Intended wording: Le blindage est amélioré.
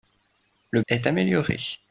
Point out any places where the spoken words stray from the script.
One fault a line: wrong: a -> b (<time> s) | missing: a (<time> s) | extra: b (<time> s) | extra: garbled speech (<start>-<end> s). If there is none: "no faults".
missing: blindage (0.8 s)